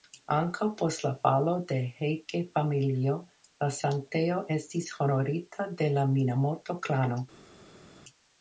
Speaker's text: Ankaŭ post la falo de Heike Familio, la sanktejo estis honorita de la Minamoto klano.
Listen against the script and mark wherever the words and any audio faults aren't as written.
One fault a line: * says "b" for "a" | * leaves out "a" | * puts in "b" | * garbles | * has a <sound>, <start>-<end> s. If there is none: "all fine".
all fine